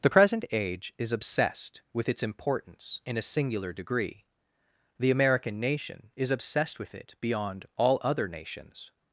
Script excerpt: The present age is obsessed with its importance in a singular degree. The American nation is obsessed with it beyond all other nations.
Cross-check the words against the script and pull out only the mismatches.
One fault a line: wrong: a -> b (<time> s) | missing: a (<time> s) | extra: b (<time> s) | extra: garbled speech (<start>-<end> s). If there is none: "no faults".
no faults